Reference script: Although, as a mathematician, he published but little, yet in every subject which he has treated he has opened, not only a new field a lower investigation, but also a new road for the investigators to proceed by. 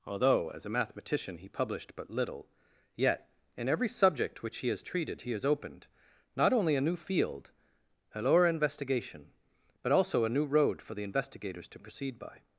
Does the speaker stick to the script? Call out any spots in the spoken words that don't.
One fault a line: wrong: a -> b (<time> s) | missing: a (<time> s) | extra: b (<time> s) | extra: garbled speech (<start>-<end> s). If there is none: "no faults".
no faults